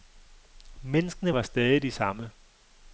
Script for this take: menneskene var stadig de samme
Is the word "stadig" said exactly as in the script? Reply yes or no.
yes